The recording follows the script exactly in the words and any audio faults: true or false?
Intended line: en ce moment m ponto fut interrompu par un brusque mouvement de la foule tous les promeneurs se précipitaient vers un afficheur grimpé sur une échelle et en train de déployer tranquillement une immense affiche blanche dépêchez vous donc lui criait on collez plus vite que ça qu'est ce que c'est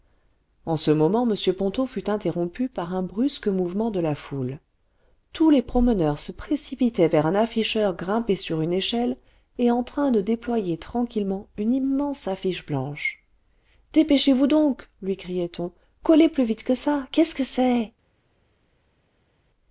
true